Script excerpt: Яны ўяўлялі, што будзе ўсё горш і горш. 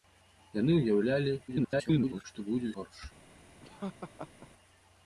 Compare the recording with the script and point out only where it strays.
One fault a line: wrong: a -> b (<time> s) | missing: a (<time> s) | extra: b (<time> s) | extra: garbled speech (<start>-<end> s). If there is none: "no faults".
extra: garbled speech (1.5-2.2 s)
missing: ўсё горш і (2.7 s)